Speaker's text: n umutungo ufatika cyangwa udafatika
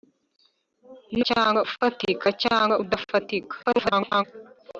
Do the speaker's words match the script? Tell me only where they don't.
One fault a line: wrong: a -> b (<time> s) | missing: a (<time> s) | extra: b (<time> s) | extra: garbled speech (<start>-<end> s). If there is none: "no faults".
wrong: umutungo -> cyangwa (1.3 s)
extra: garbled speech (3.6-4.2 s)